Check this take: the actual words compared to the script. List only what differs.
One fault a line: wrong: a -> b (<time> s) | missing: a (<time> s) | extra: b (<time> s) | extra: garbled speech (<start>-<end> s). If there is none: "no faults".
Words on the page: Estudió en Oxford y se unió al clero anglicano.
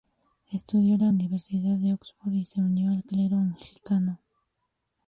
extra: la Universidad de (1.0 s)